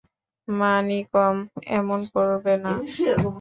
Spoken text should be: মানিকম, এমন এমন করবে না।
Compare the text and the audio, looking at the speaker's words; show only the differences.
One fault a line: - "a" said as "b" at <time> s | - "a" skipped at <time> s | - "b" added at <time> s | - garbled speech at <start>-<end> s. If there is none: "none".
- "এমন" skipped at 2.0 s